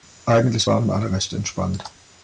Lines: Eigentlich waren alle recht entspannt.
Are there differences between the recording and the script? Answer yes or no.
no